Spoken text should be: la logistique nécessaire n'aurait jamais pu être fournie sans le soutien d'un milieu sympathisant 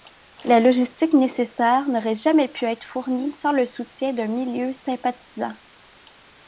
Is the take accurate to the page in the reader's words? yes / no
yes